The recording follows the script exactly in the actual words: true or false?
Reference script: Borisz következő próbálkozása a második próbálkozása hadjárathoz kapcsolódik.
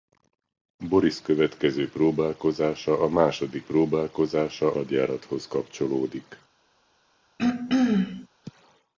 true